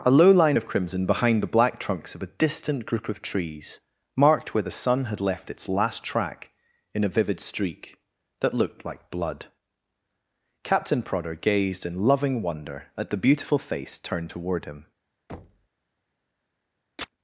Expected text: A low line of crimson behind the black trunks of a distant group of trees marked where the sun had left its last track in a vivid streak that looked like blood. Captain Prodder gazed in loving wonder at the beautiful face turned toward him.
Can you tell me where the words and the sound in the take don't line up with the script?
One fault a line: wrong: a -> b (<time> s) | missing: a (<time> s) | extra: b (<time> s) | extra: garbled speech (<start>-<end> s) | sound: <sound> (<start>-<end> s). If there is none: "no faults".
sound: thud (15.3-15.7 s)
sound: chirp (17.0-17.1 s)